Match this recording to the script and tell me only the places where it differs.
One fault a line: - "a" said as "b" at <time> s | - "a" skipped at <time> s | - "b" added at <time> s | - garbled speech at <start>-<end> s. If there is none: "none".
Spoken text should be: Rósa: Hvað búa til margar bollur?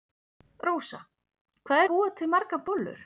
none